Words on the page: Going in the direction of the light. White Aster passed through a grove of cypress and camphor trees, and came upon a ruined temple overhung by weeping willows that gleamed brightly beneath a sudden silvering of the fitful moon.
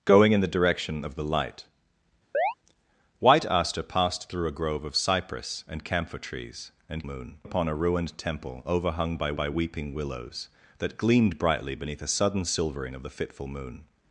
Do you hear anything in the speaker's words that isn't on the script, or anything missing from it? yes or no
yes